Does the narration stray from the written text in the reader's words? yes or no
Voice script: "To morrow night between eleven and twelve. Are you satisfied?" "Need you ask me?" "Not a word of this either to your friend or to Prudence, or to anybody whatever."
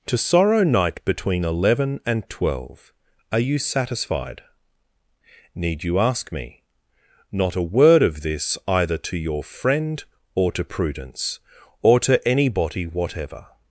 yes